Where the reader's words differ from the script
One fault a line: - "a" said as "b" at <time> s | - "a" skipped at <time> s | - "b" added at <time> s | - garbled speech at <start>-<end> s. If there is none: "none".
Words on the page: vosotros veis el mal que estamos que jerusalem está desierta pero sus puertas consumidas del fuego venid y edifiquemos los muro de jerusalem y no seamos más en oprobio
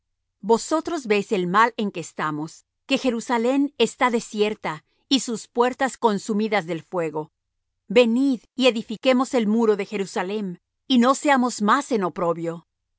- "en" added at 1.8 s
- "pero" said as "y" at 5.1 s
- "los" said as "el" at 9.3 s